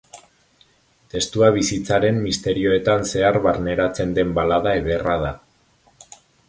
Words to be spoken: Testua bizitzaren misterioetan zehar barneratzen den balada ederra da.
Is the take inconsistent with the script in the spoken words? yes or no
no